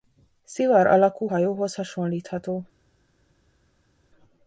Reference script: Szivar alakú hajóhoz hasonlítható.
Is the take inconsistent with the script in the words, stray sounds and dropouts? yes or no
no